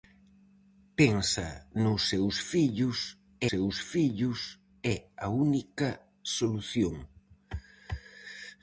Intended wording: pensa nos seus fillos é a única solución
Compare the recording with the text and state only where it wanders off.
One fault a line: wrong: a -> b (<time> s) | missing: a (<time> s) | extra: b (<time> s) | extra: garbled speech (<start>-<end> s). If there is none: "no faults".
extra: seus fillos (3.5 s)